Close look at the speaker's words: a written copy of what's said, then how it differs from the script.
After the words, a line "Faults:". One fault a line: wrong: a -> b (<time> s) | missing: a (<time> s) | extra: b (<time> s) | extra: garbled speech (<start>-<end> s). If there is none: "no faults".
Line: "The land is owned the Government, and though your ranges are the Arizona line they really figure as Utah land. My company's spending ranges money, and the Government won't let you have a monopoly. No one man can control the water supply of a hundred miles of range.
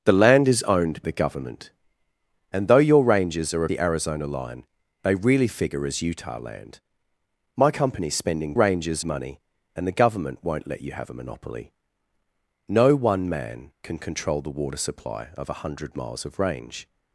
"The land is owned the Government, and though your ranges are the Arizona line they really figure as Utah land. My company's spending ranges money, and the Government won't let you have a monopoly. No one man can control the water supply of a hundred miles of range.
Faults:
no faults